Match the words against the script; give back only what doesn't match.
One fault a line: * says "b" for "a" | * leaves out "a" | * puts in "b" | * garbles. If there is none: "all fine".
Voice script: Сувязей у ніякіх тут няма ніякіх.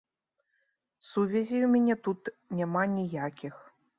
* says "мяне" for "ніякіх"